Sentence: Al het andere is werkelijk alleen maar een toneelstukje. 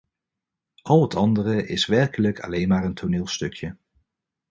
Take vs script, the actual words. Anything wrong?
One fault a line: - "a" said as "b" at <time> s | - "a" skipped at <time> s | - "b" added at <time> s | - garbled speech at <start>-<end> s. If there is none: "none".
none